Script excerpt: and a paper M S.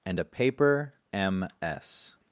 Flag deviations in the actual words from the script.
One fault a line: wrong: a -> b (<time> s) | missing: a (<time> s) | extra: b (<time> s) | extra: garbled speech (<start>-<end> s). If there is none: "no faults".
no faults